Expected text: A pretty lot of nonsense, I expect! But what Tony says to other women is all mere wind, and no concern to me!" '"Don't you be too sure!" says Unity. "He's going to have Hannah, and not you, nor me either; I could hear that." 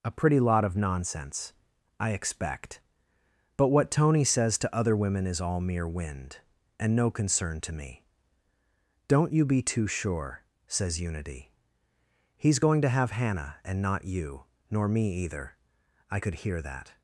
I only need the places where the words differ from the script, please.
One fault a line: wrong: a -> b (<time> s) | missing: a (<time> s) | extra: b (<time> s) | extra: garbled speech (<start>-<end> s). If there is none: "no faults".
no faults